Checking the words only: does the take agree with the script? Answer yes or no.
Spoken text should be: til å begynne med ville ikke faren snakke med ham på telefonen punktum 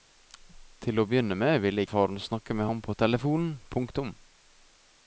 no